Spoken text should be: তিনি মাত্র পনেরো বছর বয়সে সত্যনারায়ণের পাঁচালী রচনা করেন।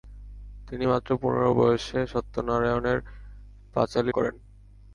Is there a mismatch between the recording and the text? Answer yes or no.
yes